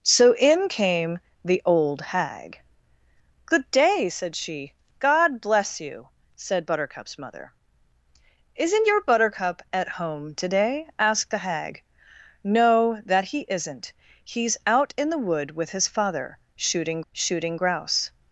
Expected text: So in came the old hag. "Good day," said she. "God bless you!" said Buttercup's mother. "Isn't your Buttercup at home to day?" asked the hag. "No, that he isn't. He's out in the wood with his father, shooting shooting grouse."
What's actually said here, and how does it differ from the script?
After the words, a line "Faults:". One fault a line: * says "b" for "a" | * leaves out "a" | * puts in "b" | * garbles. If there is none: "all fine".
So in came the old hag. "Good day," said she. "God bless you!" said Buttercup's mother. "Isn't your Buttercup at home to day?" asked the hag. "No, that he isn't. He's out in the wood with his father, shooting shooting grouse."
Faults:
all fine